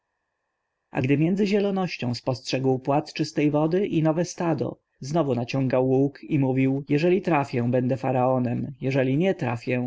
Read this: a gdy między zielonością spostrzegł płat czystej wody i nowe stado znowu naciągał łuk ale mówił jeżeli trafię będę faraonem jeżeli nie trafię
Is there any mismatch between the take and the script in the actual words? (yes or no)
yes